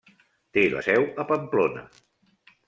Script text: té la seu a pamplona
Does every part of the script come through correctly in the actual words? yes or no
yes